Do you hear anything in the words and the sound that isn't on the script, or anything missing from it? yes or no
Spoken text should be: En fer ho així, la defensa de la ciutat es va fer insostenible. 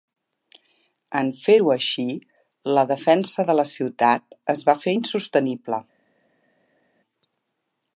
no